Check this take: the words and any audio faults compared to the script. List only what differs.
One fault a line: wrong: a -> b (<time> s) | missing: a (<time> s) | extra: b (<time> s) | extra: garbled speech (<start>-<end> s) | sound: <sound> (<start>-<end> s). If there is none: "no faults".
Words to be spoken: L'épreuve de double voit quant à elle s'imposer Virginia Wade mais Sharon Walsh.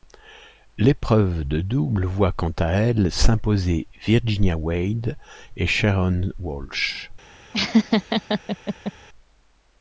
wrong: mais -> et (5.5 s)
sound: laugh (7.5-8.9 s)